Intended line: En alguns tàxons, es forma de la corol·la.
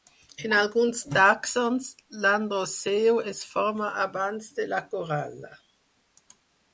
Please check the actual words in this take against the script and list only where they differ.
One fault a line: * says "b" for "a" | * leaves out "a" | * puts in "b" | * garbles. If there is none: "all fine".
* puts in "l'androceu"
* puts in "abans"